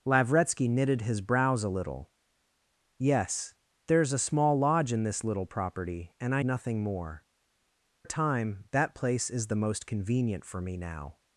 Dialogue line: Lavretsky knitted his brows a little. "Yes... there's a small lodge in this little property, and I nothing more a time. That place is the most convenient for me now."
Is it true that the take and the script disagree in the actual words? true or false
false